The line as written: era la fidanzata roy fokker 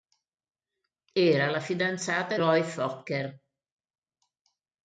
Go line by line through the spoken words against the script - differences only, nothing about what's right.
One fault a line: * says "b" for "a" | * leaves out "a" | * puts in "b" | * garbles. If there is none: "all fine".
all fine